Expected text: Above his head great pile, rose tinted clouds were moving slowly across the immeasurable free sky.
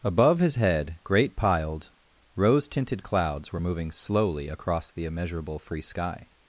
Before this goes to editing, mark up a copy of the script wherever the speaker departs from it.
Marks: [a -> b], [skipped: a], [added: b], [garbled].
Above his head great [pile, -> piled] rose tinted clouds were moving slowly across the immeasurable free sky.